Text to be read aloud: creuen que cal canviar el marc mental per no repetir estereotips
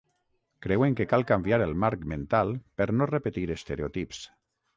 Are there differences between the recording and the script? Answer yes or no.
no